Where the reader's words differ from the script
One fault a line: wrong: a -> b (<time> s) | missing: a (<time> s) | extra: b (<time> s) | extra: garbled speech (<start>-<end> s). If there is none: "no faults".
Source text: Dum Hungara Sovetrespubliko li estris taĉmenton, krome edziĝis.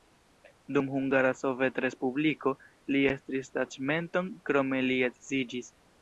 extra: li (4.9 s)